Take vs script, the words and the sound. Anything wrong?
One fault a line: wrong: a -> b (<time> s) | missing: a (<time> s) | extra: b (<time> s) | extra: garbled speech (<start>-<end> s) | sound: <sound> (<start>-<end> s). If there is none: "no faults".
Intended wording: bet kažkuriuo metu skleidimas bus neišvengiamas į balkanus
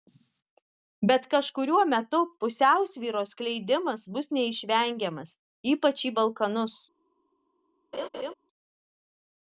extra: pusiausvyros (2.4 s)
extra: ypač (5.7 s)
sound: laugh (7.9-8.3 s)